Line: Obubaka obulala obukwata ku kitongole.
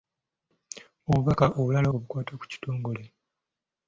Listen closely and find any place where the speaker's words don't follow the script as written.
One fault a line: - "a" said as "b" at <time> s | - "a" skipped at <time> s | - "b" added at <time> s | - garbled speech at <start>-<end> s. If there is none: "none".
none